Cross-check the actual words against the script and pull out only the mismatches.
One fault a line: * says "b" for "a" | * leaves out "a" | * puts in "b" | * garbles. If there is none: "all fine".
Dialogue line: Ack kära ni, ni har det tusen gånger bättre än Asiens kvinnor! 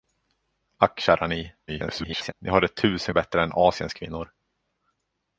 * garbles
* leaves out "gånger"